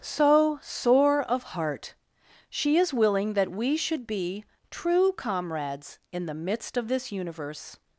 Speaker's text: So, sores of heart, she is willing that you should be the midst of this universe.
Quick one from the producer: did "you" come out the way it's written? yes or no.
no